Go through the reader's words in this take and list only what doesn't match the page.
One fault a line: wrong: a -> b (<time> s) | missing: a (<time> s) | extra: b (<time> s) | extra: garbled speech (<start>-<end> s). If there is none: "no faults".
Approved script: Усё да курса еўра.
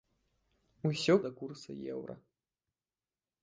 no faults